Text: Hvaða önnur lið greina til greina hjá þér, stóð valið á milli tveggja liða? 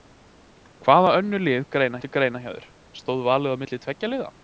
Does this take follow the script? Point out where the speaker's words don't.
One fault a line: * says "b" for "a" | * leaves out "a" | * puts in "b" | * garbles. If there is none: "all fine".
all fine